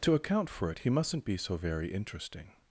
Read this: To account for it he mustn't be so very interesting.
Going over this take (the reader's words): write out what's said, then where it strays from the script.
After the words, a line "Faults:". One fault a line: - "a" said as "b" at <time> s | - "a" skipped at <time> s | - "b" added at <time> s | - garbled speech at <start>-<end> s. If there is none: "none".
To account for it he mustn't be so very interesting.
Faults:
none